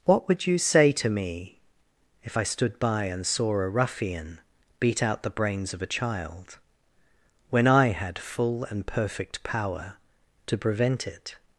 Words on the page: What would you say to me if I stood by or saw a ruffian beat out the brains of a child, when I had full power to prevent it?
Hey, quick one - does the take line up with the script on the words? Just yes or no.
no